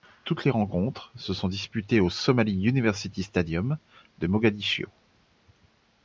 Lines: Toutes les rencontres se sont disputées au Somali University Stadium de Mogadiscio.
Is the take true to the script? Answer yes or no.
yes